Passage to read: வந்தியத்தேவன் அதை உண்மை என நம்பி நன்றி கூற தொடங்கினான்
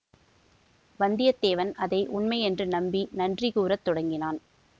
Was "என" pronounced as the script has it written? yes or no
no